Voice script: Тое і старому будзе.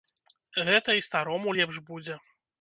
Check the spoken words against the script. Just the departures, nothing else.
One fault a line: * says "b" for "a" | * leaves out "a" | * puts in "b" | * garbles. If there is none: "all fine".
* says "Гэта" for "Тое"
* puts in "лепш"